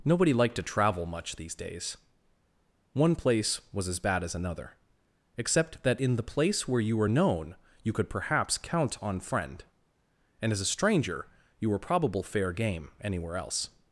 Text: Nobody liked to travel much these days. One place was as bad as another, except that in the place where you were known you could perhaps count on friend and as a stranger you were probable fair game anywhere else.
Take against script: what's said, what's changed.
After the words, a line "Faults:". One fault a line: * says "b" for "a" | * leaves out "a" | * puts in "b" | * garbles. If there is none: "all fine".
Nobody liked to travel much these days. One place was as bad as another, except that in the place where you were known you could perhaps count on friend and as a stranger you were probable fair game anywhere else.
Faults:
all fine